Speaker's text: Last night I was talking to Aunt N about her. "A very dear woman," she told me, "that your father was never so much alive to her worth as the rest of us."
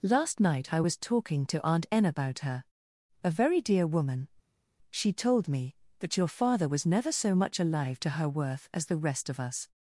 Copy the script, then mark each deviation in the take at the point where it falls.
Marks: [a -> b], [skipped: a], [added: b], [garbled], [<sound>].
Last night I was talking to Aunt N about her. "A very dear woman," she told me, "that your father was never so much alive to her worth as the rest of us."